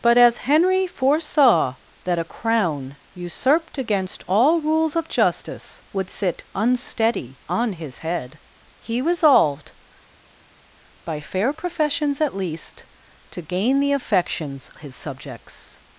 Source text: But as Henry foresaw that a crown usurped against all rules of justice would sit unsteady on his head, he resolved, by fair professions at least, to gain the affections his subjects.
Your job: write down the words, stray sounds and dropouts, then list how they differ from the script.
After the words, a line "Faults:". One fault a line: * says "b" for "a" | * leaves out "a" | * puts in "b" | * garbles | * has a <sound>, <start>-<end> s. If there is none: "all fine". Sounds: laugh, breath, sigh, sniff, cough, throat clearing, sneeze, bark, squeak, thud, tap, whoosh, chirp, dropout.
But as Henry foresaw that a crown usurped against all rules of justice would sit unsteady on his head, he resolved, by fair professions at least, to gain the affections his subjects.
Faults:
all fine